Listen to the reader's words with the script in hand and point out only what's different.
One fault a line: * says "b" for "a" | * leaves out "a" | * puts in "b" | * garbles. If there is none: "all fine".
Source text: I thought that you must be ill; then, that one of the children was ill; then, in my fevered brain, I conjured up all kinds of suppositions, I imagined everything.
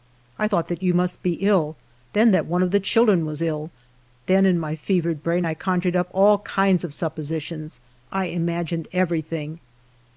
all fine